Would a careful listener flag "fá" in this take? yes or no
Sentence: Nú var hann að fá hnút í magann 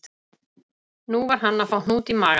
no